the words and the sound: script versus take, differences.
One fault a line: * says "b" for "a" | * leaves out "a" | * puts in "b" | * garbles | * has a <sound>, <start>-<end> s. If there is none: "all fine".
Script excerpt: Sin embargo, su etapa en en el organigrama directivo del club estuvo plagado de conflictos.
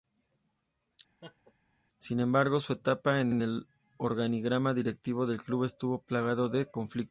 * has a laugh, 1.2-1.5 s